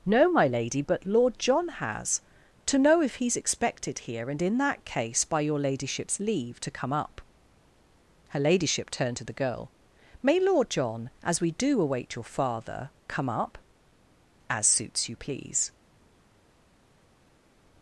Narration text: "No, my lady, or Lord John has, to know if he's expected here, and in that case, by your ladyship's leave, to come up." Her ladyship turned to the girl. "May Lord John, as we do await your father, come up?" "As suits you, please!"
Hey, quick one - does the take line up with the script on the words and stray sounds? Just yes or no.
no